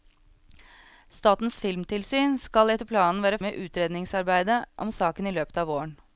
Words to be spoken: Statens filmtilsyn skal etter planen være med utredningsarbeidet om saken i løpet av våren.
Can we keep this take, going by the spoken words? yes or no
yes